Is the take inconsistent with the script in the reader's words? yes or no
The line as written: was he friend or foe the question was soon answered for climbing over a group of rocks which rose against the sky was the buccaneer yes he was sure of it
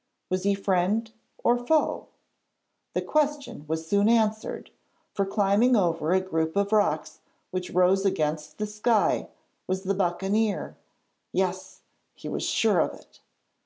no